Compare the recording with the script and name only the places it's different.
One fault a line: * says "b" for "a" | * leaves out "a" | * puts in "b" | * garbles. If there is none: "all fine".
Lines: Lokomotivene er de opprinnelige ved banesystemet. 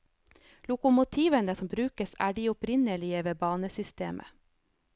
* puts in "som brukes"